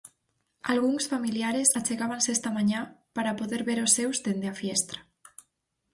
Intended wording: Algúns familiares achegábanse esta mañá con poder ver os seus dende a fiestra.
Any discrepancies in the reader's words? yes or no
yes